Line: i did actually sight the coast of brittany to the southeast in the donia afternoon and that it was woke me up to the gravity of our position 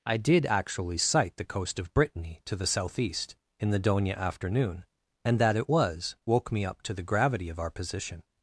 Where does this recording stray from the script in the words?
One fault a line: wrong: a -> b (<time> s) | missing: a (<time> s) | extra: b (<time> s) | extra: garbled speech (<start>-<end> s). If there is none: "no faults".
no faults